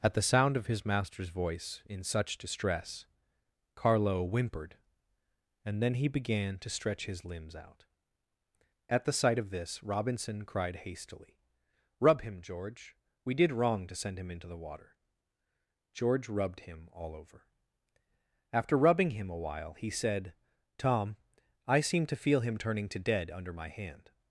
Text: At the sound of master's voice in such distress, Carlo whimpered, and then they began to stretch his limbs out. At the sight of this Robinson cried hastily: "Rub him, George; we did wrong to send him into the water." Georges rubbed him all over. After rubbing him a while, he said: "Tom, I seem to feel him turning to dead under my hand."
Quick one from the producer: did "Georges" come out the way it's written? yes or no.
no